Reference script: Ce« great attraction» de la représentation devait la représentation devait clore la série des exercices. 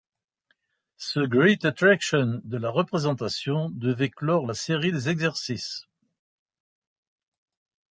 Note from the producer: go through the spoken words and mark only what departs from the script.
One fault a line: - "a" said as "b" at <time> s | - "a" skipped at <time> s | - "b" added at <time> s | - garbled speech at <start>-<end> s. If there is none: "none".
- "la représentation devait" skipped at 4.1 s